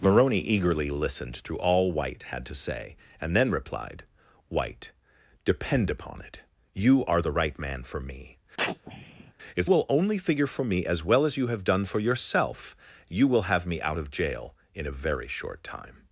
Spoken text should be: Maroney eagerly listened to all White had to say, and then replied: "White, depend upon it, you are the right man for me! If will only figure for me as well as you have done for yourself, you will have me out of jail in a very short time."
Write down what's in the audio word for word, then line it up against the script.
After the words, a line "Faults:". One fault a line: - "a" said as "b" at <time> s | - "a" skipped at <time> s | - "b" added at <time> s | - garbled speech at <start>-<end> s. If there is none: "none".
Maroney eagerly listened to all White had to say, and then replied: "White, depend upon it, you are the right man for me! If will only figure for me as well as you have done for yourself, you will have me out of jail in a very short time."
Faults:
none